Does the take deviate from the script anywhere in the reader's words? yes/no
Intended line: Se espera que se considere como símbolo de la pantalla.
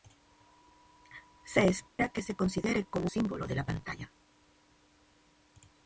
no